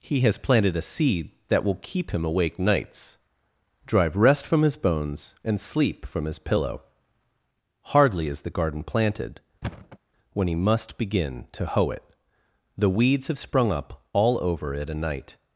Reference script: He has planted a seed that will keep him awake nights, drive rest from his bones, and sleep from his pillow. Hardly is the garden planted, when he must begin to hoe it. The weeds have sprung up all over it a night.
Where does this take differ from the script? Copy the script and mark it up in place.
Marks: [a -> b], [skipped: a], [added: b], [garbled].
He has planted a seed that will keep him awake nights, drive rest from his bones, and sleep from his pillow. Hardly is the garden planted, when he must begin to hoe it. The weeds have sprung up all over it a night.